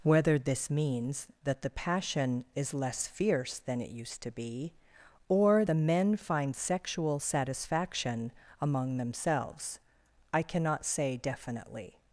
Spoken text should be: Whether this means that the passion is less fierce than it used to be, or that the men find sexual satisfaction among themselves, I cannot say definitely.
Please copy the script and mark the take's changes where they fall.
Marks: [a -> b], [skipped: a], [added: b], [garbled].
Whether this means that the passion is less fierce than it used to be, or [skipped: that] the men find sexual satisfaction among themselves, I cannot say definitely.